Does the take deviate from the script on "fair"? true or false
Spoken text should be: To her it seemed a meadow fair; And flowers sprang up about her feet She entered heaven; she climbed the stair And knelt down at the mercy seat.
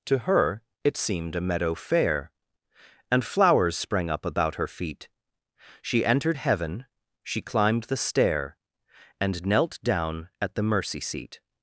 false